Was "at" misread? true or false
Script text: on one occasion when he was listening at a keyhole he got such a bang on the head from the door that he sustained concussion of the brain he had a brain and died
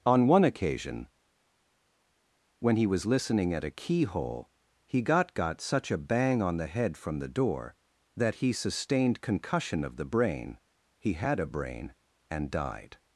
false